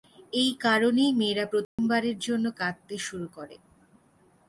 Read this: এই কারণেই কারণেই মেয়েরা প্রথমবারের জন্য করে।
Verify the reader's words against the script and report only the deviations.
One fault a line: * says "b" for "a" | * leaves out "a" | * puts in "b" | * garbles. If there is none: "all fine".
* leaves out "কারণেই"
* puts in "কাঁদতে শুরু"